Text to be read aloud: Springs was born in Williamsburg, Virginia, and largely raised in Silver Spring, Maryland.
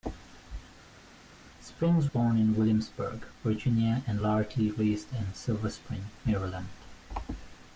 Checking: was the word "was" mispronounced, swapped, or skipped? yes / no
yes